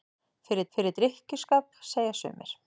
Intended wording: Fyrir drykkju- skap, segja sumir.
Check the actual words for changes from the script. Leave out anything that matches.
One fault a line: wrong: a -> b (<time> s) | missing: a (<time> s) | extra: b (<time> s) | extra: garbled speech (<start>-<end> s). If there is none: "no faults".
extra: fyrir (0.7 s)